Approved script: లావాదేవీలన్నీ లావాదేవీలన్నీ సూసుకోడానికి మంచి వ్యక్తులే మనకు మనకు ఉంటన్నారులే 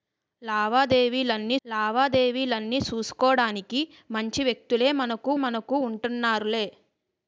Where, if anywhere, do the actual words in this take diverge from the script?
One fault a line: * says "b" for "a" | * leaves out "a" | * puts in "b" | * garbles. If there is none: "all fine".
all fine